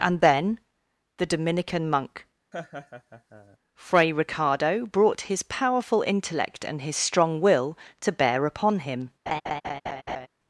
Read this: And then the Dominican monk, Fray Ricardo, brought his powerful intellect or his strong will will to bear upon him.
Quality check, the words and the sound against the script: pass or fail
fail